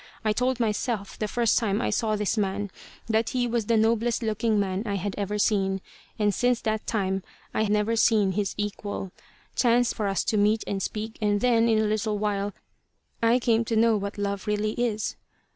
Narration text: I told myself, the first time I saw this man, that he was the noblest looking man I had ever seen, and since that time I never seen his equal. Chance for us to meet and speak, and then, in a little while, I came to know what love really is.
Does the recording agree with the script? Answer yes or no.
yes